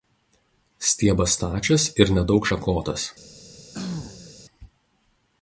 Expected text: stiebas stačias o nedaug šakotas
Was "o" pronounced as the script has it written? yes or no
no